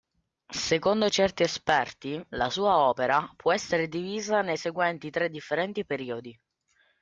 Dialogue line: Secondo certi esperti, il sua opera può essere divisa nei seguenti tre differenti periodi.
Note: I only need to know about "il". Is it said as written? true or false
false